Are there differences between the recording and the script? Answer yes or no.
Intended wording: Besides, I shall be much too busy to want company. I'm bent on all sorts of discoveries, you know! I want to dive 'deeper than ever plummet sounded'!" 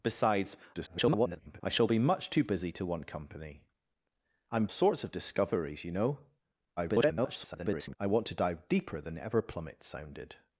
yes